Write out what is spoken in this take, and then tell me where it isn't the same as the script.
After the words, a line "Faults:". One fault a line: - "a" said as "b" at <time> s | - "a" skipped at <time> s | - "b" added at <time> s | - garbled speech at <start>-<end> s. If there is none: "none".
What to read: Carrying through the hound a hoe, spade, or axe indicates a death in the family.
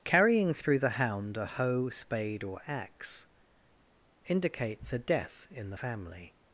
Carrying through the hound a hoe, spade, or axe indicates a death in the family.
Faults:
none